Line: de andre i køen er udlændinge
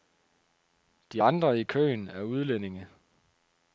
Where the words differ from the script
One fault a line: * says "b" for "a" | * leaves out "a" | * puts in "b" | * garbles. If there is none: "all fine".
all fine